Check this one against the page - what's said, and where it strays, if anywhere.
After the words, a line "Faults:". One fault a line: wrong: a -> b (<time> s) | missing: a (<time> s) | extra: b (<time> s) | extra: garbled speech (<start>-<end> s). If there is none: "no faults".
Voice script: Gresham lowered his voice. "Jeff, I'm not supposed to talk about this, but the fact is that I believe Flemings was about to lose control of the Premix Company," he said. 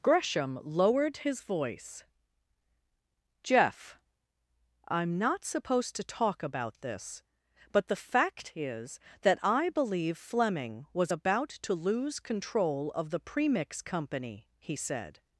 Gresham lowered his voice. "Jeff, I'm not supposed to talk about this, but the fact is that I believe Fleming was about to lose control of the Premix Company," he said.
Faults:
wrong: Flemings -> Fleming (10.2 s)